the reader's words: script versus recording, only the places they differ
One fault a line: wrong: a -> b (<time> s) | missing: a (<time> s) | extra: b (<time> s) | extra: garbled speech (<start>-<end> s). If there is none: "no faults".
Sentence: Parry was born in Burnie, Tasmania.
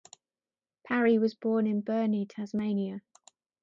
no faults